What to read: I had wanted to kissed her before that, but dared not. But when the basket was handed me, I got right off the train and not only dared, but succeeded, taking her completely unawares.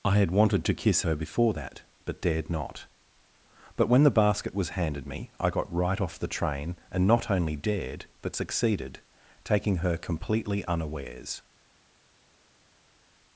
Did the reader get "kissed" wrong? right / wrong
wrong